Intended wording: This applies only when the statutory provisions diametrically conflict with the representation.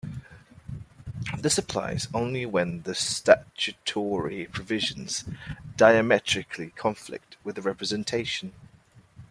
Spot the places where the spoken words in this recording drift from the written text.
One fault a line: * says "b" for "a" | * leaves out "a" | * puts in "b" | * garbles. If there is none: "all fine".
all fine